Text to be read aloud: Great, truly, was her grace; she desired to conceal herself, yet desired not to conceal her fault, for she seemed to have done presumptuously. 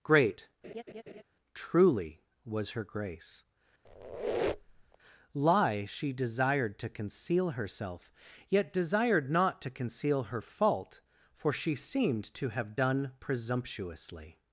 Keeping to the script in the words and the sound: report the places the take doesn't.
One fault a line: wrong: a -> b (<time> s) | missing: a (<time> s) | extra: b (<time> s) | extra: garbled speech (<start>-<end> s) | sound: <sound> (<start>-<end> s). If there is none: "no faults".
sound: laugh (0.6-1.2 s)
sound: squeak (3.8-5.0 s)
extra: lie (5.3 s)